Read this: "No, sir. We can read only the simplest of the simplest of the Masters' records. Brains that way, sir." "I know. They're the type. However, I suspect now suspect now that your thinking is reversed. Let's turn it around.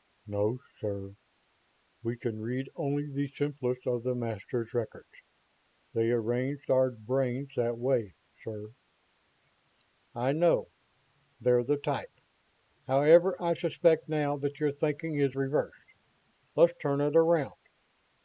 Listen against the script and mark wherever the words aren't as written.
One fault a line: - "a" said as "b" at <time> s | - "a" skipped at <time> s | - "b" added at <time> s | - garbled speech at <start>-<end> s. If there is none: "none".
- "simplest of the Masters records" said as "Masters records They arranged our" at 4.2 s
- "suspect now" skipped at 14.4 s